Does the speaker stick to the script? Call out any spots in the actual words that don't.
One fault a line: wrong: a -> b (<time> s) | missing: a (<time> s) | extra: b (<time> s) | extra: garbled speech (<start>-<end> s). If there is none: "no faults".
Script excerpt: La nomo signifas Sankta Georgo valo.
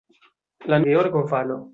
missing: nomo signifas Sankta (0.8 s)